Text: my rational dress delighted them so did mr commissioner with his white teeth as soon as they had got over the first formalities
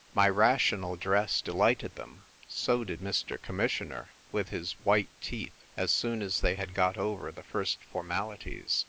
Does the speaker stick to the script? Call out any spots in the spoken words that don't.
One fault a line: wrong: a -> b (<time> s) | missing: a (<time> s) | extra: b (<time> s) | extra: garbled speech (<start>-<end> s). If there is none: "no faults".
no faults